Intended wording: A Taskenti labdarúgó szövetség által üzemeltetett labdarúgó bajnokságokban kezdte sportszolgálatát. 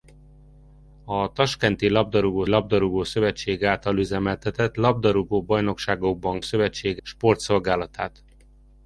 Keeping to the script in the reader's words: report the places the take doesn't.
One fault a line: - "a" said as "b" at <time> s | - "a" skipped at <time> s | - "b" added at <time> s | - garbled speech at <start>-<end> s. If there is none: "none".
- "labdarúgó" added at 2.5 s
- "kezdte" said as "szövetség" at 6.4 s